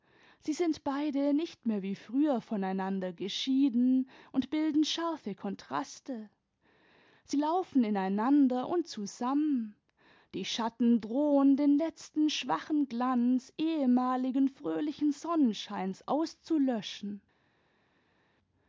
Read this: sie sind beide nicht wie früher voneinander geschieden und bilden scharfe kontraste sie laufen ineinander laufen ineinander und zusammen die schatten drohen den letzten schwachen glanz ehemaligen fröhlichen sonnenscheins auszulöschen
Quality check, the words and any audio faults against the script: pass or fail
fail